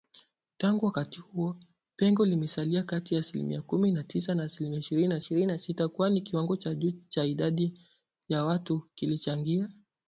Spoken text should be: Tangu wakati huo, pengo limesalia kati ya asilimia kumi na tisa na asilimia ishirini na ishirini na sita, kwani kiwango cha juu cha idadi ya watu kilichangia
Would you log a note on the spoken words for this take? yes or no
no